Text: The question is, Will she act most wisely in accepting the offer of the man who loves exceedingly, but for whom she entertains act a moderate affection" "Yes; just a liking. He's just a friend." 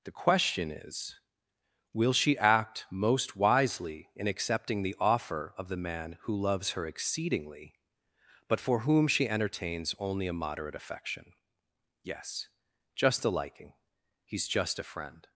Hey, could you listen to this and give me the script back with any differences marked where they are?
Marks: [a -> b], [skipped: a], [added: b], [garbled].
The question is, Will she act most wisely in accepting the offer of the man who loves [added: her] exceedingly, but for whom she entertains [act -> only] a moderate affection" "Yes; just a liking. He's just a friend."